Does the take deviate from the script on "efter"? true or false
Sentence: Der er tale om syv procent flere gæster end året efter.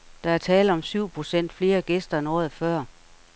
true